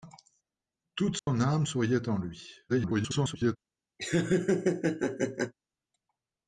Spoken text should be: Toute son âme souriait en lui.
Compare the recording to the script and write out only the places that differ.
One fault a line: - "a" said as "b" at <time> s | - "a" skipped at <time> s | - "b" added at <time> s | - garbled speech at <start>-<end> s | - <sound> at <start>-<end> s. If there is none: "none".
- dropout at 1.2-1.3 s
- garbled speech at 2.7-3.6 s
- laugh at 4.0-5.5 s